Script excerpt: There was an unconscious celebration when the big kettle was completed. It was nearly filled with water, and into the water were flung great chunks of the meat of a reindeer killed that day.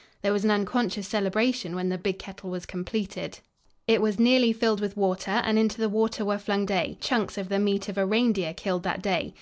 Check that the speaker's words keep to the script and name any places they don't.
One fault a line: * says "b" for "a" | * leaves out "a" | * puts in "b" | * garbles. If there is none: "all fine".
* says "day" for "great"